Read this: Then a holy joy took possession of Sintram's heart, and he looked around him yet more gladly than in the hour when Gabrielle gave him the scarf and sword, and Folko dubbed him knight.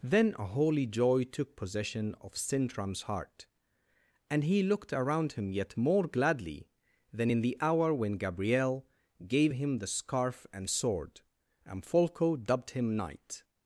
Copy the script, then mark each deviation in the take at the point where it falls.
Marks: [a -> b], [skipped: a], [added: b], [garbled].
Then a holy joy took possession of Sintram's heart, and he looked around him yet more gladly than in the hour when Gabrielle gave him the scarf and sword, and Folko dubbed him knight.